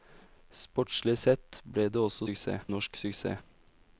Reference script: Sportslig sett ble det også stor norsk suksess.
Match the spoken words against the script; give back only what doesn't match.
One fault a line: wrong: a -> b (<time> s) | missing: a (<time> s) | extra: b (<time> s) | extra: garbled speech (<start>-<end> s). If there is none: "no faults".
wrong: stor -> suksess (2.2 s)